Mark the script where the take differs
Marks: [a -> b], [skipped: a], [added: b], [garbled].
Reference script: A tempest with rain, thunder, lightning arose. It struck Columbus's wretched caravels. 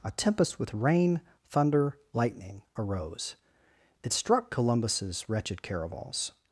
A tempest with rain, thunder, lightning arose. It struck Columbus's wretched caravels.